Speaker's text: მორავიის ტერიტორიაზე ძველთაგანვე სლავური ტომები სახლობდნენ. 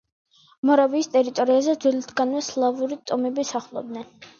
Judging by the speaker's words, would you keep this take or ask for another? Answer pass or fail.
pass